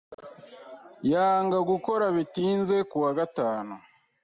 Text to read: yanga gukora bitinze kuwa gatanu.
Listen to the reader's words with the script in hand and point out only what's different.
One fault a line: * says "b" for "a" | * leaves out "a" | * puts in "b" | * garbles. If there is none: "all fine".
all fine